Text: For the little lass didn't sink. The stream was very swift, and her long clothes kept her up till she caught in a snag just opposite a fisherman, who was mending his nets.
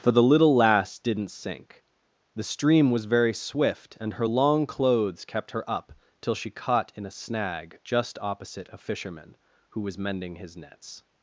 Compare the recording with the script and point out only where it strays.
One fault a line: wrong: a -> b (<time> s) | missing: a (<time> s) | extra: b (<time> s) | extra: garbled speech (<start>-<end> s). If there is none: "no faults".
no faults